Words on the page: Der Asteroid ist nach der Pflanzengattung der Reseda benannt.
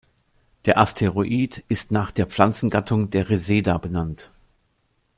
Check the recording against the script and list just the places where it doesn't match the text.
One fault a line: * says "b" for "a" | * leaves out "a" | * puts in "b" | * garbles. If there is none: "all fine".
all fine